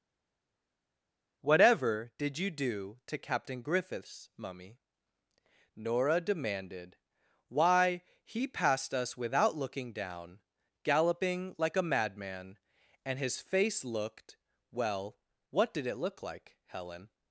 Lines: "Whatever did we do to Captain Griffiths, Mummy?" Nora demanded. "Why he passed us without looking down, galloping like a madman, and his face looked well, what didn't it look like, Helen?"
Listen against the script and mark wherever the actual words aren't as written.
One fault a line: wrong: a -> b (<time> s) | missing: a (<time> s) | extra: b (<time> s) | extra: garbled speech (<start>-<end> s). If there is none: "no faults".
wrong: we -> you (2.4 s)
wrong: didn't -> did (15.7 s)